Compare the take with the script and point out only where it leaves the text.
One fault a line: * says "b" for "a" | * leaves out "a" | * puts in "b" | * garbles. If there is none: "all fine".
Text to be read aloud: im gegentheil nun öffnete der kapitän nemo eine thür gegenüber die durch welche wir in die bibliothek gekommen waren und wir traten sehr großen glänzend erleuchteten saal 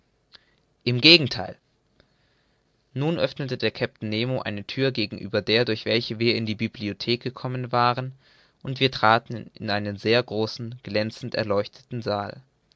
* says "der" for "die"
* puts in "in einen"